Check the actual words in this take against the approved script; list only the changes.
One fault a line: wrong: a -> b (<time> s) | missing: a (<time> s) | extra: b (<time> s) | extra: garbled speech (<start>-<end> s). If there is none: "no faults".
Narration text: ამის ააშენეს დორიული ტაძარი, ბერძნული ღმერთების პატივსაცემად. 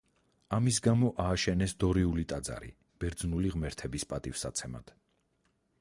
extra: გამო (0.9 s)